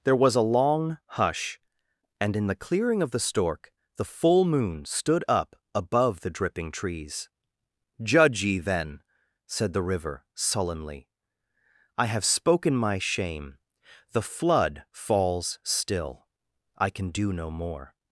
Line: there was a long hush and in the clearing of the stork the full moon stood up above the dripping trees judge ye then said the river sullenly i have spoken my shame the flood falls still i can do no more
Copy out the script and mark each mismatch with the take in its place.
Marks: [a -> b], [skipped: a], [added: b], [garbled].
there was a long hush and in the clearing of the stork the full moon stood up above the dripping trees judge ye then said the river sullenly i have spoken my shame the flood falls still i can do no more